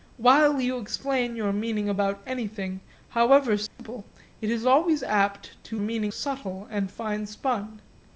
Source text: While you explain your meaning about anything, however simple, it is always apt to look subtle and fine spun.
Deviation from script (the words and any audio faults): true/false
true